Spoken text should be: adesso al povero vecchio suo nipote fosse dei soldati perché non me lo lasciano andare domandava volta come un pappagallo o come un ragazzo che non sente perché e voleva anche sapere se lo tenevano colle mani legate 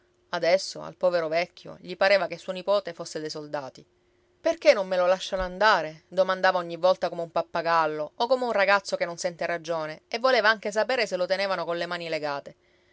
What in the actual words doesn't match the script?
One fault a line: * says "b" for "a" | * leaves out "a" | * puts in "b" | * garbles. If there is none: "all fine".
* puts in "gli pareva che"
* puts in "ogni"
* says "ragione" for "perché"